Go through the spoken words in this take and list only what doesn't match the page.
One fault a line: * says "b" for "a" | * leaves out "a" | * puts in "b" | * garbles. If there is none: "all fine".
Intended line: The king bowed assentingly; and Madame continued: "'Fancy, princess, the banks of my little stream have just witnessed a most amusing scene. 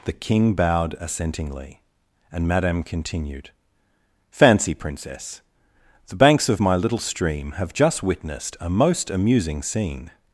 all fine